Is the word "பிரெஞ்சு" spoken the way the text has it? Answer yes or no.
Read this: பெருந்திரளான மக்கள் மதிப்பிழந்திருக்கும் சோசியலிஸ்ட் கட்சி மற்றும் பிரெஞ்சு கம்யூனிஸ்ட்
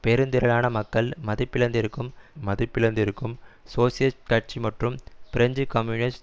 yes